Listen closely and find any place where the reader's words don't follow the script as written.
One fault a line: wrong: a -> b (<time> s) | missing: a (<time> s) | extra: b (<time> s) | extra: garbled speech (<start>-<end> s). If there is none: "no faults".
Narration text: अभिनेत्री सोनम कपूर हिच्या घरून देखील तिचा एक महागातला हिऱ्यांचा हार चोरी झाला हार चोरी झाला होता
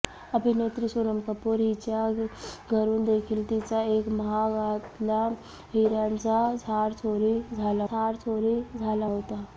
no faults